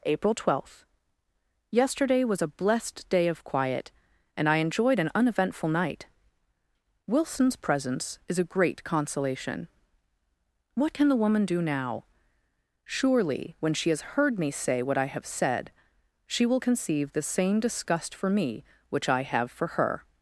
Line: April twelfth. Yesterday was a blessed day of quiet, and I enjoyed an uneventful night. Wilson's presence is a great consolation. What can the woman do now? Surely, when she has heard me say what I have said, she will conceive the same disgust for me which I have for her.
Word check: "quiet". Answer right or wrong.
right